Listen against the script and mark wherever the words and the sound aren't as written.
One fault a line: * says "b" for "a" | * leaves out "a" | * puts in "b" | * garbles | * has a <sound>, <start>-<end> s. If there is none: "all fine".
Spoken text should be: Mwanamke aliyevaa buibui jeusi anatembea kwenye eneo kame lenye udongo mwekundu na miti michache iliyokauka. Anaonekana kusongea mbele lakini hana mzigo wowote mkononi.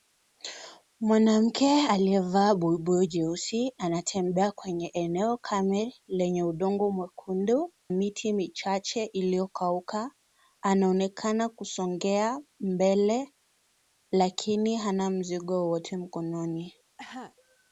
* leaves out "na"
* has a cough, 17.0-17.4 s